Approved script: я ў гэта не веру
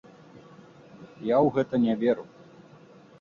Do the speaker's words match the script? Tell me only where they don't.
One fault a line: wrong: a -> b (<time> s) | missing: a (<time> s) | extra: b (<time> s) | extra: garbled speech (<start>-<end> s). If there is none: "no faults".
no faults